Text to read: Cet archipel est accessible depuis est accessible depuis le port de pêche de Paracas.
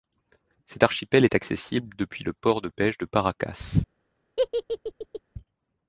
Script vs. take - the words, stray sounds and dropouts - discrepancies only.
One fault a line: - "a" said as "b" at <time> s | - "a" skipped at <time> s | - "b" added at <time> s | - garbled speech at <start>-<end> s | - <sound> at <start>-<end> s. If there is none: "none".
- "est accessible depuis" skipped at 2.2 s
- laugh at 4.4-5.2 s